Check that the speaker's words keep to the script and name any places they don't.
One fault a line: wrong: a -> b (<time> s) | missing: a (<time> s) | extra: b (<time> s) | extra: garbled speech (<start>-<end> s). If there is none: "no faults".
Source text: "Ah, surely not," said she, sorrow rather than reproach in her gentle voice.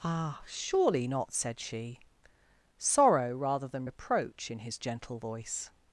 wrong: her -> his (4.6 s)